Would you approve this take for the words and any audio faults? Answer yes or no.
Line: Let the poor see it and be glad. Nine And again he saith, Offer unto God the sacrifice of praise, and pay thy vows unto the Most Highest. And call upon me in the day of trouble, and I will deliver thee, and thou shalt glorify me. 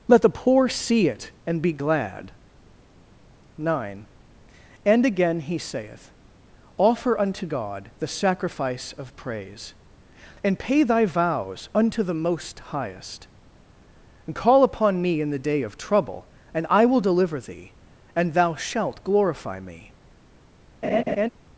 no